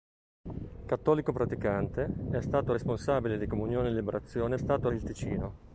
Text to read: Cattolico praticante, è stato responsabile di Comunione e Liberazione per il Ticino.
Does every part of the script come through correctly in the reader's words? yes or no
no